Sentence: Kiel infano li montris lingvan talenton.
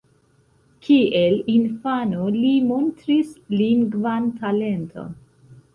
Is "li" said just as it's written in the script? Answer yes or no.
yes